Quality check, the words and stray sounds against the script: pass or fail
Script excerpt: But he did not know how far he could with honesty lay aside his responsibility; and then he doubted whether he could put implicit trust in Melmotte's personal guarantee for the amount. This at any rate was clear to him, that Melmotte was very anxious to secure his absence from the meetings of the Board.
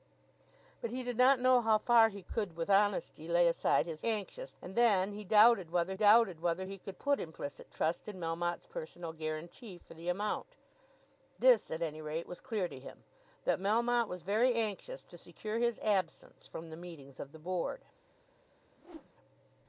fail